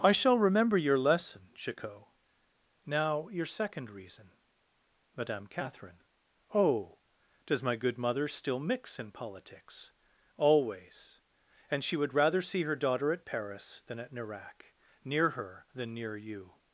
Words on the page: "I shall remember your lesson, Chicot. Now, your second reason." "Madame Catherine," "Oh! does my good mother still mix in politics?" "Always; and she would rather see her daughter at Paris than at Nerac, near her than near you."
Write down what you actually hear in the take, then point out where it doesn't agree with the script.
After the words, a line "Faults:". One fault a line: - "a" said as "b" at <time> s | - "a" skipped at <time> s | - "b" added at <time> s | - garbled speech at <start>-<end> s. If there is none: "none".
"I shall remember your lesson, Chicot. Now, your second reason." "Madame Catherine," "Oh! does my good mother still mix in politics?" "Always; and she would rather see her daughter at Paris than at Nerac, near her than near you."
Faults:
none